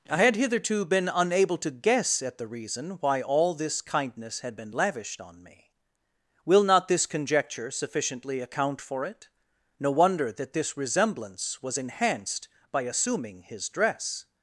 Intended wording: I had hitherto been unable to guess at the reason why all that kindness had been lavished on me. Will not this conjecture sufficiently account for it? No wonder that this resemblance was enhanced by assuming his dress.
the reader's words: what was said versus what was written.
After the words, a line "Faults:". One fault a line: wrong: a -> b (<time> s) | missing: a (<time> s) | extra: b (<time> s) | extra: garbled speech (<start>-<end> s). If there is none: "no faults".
I had hitherto been unable to guess at the reason why all this kindness had been lavished on me. Will not this conjecture sufficiently account for it? No wonder that this resemblance was enhanced by assuming his dress.
Faults:
wrong: that -> this (3.5 s)